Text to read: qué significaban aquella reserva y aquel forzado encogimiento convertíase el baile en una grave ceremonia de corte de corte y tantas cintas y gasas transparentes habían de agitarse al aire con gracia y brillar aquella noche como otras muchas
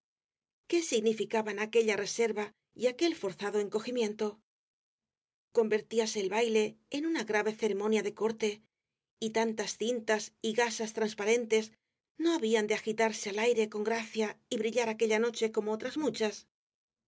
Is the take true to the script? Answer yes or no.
no